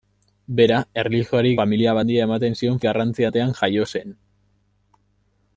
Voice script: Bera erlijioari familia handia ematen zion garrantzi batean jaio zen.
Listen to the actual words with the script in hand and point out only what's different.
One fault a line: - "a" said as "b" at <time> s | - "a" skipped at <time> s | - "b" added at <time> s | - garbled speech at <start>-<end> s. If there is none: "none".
none